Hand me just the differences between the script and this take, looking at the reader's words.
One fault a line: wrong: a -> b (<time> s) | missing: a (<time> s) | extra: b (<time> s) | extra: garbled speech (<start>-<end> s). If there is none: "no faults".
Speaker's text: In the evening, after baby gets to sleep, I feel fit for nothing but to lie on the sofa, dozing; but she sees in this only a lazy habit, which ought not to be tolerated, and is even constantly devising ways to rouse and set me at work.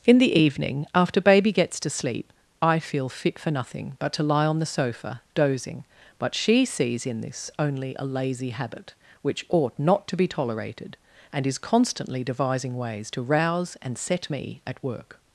missing: even (11.6 s)